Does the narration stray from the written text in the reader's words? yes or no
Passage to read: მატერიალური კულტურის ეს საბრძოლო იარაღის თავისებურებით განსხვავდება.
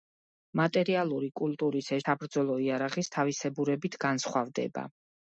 no